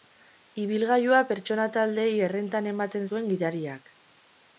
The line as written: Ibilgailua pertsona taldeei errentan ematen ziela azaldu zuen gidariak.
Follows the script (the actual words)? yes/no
no